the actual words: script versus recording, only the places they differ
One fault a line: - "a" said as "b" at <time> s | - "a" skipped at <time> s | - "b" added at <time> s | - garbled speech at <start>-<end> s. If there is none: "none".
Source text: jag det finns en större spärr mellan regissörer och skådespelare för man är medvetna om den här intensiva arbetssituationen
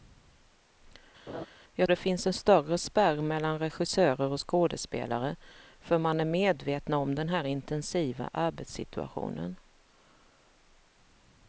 none